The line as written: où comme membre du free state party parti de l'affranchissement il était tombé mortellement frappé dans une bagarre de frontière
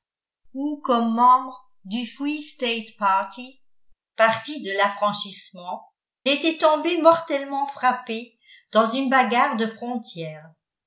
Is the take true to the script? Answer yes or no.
no